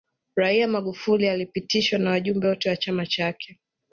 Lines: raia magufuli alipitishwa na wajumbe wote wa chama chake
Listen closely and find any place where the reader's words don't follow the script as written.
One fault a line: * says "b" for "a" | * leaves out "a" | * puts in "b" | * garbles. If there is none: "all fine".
all fine